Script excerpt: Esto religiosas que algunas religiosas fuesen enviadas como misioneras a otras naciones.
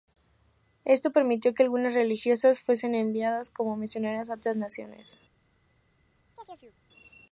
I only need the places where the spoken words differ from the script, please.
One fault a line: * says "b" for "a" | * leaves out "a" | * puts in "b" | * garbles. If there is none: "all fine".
* says "permitió" for "religiosas"